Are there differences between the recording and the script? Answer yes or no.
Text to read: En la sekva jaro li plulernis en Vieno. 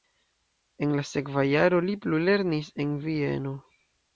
no